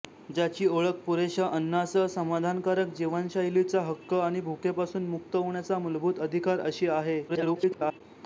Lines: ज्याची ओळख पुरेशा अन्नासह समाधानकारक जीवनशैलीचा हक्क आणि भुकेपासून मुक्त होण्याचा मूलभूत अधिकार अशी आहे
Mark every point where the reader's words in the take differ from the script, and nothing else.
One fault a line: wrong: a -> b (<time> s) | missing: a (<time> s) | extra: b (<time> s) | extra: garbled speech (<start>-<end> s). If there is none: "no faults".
extra: garbled speech (7.3-8.0 s)